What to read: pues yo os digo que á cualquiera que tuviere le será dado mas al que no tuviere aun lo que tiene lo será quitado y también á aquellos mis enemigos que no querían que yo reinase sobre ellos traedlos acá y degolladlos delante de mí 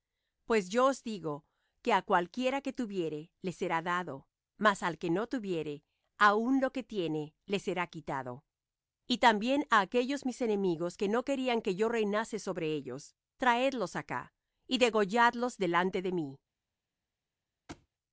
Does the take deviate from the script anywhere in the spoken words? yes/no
yes